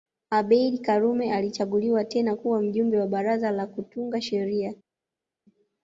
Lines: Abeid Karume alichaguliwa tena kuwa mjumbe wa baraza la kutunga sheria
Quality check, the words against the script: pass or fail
pass